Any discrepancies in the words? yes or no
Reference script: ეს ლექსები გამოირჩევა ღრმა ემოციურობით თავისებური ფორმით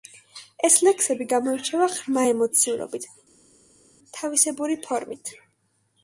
no